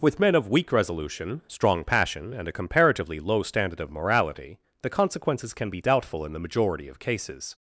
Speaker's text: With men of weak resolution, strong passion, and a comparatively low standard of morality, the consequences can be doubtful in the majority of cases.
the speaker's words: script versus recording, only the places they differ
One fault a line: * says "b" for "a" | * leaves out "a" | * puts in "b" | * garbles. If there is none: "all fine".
all fine